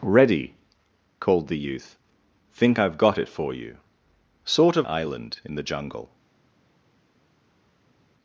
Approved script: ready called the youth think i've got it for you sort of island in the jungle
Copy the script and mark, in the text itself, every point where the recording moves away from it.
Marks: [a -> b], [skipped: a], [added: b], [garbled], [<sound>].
ready called the youth think i've got it for you sort of island in the jungle